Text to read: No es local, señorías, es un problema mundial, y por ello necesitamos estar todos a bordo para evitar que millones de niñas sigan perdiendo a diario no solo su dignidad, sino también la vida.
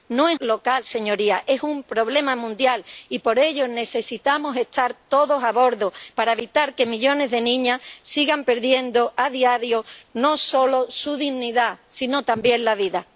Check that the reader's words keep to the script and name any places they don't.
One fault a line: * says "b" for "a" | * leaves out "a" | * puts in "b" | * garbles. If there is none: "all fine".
all fine